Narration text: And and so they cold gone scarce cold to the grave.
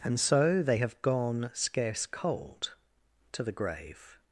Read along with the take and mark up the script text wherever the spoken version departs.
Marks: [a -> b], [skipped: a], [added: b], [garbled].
And [skipped: and] so they [cold -> have] gone scarce cold to the grave.